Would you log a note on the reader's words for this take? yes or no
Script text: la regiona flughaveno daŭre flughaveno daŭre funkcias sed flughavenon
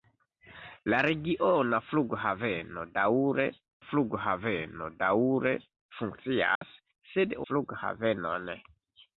no